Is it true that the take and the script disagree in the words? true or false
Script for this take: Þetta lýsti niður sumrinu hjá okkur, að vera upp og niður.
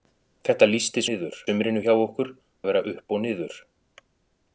false